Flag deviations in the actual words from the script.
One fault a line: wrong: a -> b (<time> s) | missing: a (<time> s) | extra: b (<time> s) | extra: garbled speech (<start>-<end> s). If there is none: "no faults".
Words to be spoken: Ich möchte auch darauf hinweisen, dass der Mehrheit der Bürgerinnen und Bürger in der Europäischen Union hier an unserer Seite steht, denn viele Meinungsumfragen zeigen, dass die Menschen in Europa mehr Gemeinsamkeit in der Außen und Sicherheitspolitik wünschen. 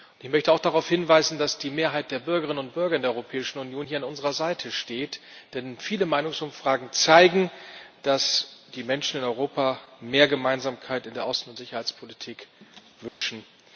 wrong: der -> die (1.6 s)